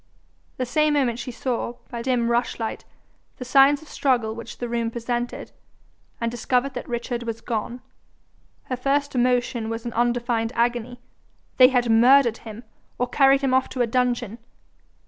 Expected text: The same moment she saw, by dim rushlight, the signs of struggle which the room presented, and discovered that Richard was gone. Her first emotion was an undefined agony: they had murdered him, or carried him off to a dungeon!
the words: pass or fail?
pass